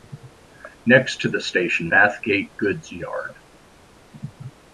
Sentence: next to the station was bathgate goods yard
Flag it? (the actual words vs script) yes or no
yes